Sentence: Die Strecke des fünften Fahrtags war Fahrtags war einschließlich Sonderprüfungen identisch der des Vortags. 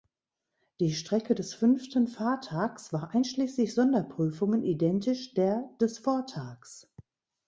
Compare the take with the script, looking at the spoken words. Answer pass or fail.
fail